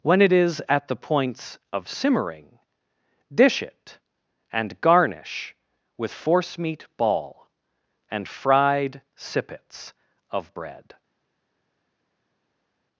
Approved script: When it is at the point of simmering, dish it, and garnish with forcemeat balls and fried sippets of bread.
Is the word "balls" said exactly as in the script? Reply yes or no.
no